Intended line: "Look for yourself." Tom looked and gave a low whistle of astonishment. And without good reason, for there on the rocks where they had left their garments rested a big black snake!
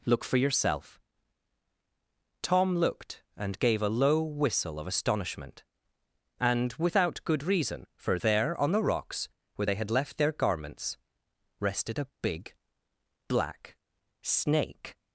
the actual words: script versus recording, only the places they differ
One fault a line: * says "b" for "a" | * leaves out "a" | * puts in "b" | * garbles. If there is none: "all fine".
all fine